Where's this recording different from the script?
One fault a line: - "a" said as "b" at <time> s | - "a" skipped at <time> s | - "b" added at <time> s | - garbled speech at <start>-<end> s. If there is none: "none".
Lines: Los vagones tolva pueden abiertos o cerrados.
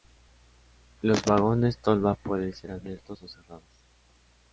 - "ser" added at 2.5 s